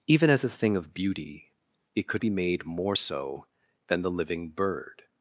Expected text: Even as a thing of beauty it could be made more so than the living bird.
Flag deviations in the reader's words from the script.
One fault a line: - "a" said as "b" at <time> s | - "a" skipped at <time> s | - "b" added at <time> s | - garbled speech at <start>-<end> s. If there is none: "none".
none